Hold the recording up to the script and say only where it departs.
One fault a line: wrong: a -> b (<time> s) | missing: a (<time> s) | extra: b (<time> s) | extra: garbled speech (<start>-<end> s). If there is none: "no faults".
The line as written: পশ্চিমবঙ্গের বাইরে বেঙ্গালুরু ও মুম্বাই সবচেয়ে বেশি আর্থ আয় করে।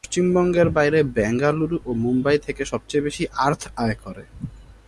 extra: থেকে (2.4 s)